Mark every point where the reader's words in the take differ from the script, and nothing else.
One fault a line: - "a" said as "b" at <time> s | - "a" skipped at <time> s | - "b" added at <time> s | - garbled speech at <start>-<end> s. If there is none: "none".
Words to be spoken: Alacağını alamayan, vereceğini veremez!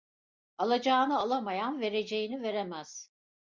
none